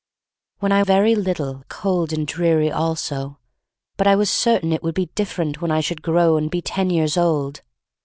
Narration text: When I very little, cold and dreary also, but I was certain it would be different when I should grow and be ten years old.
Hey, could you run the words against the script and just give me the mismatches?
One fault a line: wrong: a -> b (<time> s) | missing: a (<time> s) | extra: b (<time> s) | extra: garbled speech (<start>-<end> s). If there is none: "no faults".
no faults